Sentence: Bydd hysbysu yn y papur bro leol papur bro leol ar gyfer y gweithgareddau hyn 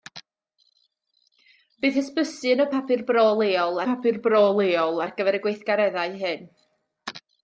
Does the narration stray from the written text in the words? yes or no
no